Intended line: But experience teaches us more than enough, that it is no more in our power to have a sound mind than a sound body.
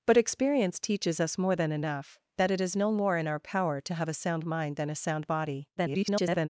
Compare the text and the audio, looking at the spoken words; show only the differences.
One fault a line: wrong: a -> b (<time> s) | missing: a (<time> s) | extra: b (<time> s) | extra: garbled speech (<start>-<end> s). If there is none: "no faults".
extra: garbled speech (5.8-6.5 s)